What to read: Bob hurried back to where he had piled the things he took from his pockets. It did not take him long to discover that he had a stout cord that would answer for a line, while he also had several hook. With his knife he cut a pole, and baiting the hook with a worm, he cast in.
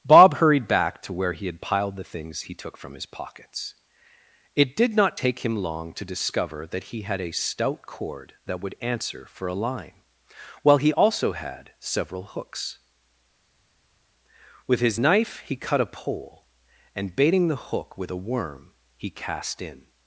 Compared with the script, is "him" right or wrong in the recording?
right